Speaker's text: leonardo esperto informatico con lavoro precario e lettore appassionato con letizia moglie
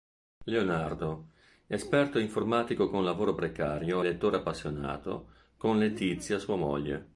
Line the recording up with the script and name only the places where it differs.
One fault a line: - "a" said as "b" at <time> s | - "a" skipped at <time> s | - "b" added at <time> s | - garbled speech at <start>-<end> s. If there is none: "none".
- "sua" added at 6.4 s